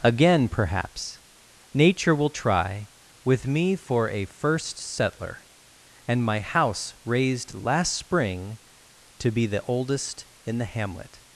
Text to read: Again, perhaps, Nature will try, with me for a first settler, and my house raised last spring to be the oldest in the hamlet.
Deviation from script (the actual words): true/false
false